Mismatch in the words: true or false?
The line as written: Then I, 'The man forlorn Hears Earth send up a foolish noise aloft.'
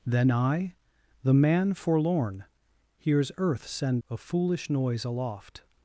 true